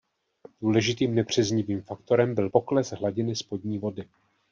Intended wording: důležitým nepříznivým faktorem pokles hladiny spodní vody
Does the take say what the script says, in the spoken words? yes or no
no